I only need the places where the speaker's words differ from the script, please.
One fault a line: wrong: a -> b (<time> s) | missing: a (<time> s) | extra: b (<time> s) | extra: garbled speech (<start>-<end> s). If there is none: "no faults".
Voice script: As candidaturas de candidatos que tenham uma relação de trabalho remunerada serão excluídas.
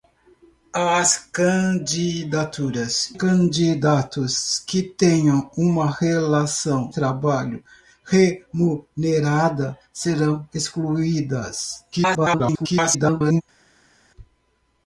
missing: de (3.1 s)
missing: de (6.9 s)
extra: garbled speech (11.9-13.4 s)